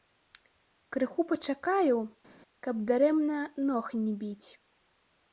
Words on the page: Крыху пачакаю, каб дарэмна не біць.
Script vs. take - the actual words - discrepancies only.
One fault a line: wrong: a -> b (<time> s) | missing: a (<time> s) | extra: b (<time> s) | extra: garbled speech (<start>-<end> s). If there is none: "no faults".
extra: ног (3.7 s)